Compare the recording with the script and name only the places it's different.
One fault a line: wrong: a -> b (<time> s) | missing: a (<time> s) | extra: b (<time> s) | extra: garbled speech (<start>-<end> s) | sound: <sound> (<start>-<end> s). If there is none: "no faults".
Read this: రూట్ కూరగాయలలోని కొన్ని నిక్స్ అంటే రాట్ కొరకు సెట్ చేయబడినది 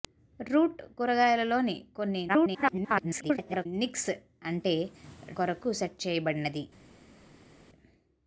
extra: garbled speech (2.3-3.7 s)
missing: రాట్ (4.8 s)